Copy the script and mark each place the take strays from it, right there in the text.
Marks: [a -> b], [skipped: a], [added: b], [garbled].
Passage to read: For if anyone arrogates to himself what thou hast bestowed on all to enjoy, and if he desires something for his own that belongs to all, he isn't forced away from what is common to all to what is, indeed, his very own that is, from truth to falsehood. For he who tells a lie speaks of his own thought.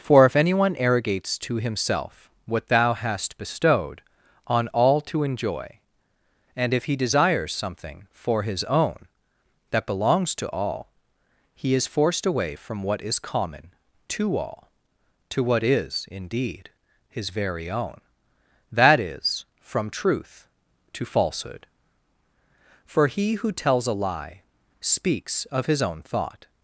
For if anyone arrogates to himself what thou hast bestowed on all to enjoy, and if he desires something for his own that belongs to all, he [isn't -> is] forced away from what is common to all to what is, indeed, his very own that is, from truth to falsehood. For he who tells a lie speaks of his own thought.